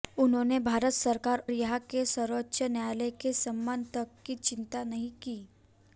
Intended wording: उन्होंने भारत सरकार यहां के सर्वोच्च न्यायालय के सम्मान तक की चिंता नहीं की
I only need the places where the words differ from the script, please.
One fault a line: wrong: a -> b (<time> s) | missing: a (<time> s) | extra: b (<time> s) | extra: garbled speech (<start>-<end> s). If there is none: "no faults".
no faults